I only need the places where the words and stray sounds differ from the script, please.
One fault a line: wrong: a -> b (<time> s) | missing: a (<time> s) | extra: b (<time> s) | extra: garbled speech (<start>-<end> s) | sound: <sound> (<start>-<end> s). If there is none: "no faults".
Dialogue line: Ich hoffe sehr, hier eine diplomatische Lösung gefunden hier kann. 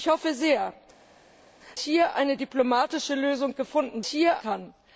no faults